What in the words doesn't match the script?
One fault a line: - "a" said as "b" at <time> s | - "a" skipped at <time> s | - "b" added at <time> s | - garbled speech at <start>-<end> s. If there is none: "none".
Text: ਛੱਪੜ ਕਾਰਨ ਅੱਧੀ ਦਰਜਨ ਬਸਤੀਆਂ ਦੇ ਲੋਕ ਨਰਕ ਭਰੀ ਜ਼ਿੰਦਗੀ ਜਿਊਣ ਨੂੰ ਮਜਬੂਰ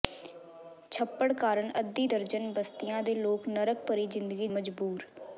- "ਜਿਊਣ ਨੂੰ" skipped at 4.5 s